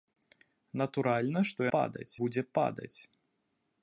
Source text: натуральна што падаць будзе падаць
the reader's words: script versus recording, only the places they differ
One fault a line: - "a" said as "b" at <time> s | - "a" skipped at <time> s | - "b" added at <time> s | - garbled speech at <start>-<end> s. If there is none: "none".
none